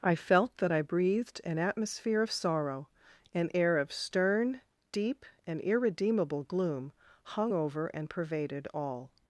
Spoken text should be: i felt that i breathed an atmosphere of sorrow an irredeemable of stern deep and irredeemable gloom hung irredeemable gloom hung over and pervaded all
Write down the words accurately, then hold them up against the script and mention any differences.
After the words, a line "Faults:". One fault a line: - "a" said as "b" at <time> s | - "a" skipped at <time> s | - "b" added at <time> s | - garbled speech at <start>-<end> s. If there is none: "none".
i felt that i breathed an atmosphere of sorrow an air of stern deep and irredeemable gloom hung over and pervaded all
Faults:
- "irredeemable" said as "air" at 3.5 s
- "irredeemable gloom hung" skipped at 7.5 s